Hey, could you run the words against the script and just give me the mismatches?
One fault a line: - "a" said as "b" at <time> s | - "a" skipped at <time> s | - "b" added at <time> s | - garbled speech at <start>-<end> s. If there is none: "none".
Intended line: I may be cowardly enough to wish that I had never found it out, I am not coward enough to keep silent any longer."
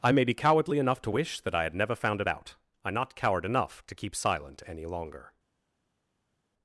- "am" skipped at 2.9 s